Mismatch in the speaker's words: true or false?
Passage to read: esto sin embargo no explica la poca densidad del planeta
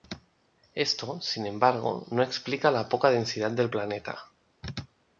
false